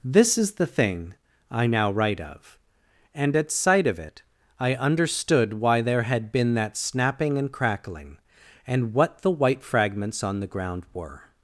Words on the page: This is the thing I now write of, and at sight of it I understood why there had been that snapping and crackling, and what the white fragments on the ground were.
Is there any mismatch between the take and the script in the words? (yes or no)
no